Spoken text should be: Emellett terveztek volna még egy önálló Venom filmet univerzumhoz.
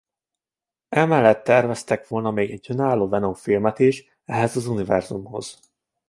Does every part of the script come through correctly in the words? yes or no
no